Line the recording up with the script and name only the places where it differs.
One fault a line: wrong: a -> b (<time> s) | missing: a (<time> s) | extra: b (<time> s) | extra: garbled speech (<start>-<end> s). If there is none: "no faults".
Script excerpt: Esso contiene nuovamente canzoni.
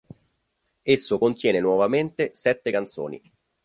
extra: sette (2.3 s)